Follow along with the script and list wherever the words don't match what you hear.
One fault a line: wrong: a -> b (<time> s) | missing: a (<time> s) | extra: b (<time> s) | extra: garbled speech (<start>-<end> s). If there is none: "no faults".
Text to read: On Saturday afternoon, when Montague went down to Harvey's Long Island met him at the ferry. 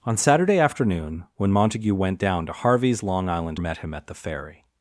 no faults